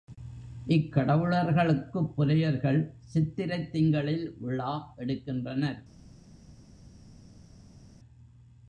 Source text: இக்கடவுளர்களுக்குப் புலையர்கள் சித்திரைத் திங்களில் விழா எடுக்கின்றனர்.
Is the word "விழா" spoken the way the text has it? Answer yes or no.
yes